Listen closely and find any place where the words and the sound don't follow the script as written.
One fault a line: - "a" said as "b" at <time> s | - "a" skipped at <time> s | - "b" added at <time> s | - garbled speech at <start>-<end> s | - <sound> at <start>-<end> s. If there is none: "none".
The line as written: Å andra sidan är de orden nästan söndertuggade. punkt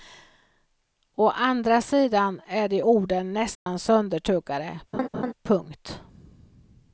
- dropout at 3.5-3.7 s
- laugh at 4.9-5.3 s